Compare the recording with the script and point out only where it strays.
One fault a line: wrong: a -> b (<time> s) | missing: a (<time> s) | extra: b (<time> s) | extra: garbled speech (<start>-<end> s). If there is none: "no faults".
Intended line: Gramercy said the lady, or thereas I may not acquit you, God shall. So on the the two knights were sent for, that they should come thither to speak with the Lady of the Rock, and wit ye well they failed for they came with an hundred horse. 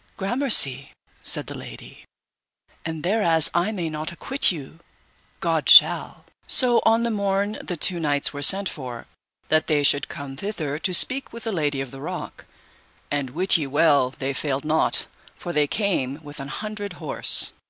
wrong: or -> and (2.8 s)
extra: morn (7.1 s)
extra: not (14.6 s)